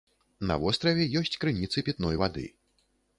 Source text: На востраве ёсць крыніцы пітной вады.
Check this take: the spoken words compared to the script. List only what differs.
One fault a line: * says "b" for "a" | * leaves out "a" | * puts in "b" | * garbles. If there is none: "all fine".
all fine